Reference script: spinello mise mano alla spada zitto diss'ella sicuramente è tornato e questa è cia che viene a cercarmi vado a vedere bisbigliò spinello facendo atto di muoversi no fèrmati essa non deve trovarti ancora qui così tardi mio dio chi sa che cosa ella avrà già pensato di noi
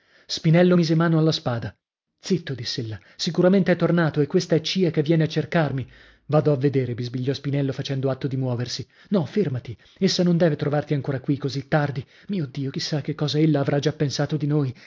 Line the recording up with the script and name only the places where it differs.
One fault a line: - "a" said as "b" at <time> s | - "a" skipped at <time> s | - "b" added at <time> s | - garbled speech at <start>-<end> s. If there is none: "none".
none